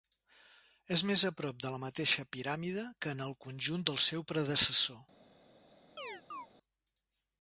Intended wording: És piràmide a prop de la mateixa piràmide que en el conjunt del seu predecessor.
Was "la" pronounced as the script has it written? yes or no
yes